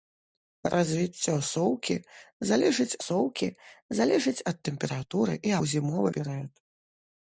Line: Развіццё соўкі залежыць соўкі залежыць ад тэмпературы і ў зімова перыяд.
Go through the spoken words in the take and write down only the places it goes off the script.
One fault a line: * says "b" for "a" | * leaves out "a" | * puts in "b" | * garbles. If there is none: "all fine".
all fine